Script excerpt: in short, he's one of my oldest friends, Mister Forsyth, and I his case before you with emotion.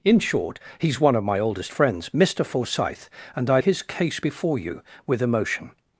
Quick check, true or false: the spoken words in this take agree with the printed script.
true